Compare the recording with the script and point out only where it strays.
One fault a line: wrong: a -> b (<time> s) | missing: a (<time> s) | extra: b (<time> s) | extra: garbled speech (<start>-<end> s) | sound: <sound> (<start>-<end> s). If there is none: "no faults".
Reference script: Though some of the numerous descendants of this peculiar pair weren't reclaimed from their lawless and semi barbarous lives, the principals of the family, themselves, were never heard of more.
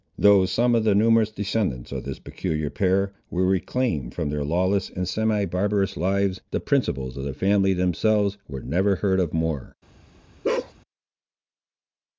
wrong: weren't -> were (3.3 s)
sound: bark (10.4-10.7 s)